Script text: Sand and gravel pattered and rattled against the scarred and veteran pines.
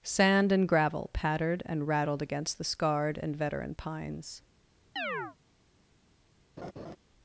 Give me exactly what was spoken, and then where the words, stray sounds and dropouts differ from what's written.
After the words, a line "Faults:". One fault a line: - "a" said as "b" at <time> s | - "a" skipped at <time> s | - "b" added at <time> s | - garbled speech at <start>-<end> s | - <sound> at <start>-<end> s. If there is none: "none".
Sand and gravel pattered and rattled against the scarred and veteran pines.
Faults:
- chirp at 5.0-5.4 s
- laugh at 6.6-7.0 s